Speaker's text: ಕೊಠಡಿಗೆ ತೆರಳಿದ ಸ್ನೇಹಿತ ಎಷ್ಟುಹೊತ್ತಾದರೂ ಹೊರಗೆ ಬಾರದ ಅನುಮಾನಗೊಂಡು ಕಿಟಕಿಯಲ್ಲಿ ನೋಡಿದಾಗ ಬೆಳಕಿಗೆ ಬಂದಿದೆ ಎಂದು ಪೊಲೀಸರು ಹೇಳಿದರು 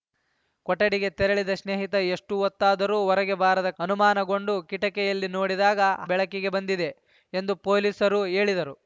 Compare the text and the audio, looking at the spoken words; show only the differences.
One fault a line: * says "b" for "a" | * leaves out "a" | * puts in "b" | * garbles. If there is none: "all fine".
all fine